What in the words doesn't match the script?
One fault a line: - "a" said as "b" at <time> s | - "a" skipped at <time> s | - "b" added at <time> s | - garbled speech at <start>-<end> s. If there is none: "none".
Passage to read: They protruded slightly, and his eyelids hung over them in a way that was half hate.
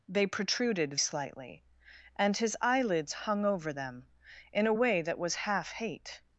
none